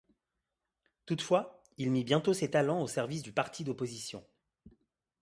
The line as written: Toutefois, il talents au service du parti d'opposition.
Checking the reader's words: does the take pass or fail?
fail